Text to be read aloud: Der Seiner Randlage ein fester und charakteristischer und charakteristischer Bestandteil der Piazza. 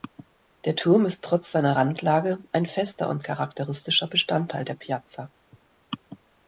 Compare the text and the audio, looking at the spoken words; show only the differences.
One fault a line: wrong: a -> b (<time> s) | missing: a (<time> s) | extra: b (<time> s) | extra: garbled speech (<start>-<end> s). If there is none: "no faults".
extra: Turm ist trotz (0.8 s)
missing: und charakteristischer (4.1 s)